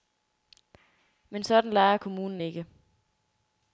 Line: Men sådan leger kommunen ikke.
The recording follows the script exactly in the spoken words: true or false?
true